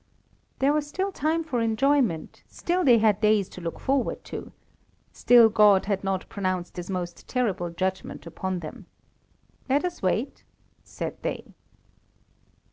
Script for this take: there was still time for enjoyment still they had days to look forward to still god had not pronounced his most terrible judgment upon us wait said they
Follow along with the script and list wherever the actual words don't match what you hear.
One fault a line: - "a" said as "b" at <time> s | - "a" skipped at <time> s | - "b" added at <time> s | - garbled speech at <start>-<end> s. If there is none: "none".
- "them let" added at 8.6 s